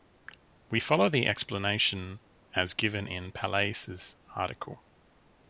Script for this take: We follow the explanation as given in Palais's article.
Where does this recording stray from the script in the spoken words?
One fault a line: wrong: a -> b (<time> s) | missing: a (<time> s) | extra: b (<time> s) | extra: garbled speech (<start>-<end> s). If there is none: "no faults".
no faults